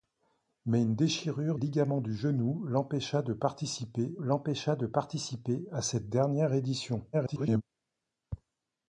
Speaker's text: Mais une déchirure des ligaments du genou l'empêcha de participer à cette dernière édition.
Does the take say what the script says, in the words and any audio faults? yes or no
no